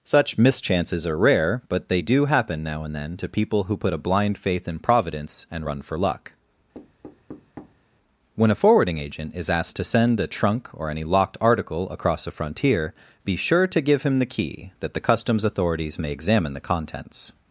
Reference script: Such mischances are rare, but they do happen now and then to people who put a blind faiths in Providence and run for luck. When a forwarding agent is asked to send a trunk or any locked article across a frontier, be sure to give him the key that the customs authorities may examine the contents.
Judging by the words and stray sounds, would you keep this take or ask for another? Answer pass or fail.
fail